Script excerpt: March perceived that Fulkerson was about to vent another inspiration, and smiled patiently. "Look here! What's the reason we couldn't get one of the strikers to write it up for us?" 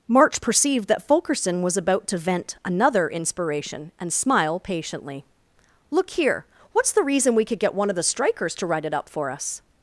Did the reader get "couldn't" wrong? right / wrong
wrong